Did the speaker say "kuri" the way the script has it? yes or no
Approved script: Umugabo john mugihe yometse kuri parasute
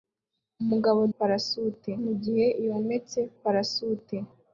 no